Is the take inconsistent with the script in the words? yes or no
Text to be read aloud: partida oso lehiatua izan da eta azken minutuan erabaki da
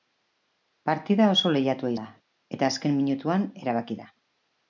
yes